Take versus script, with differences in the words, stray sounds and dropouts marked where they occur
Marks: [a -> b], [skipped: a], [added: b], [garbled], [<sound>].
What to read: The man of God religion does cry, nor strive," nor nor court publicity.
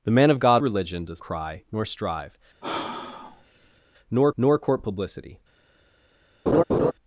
The man of God religion does cry, nor strive," [sigh] nor nor court publicity. [laugh]